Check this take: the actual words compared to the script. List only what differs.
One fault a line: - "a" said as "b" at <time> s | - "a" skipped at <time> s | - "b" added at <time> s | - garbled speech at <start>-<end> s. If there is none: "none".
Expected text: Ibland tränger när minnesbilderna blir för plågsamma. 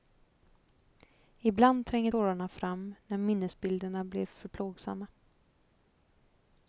- "tårarna fram" added at 2.0 s